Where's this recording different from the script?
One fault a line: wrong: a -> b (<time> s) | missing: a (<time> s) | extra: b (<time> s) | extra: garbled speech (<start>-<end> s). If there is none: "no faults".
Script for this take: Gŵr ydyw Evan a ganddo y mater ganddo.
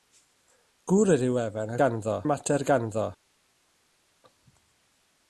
no faults